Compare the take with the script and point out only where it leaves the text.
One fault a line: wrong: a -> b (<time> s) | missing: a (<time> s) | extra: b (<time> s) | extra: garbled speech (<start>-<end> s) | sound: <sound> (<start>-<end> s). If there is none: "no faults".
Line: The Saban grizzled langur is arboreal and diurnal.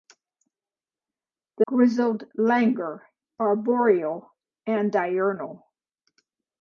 missing: Saban (1.6 s)
missing: is (3.0 s)